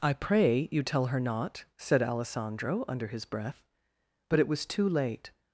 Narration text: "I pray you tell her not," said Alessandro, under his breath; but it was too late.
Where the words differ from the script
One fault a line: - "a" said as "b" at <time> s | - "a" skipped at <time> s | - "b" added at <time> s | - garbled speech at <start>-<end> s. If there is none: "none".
none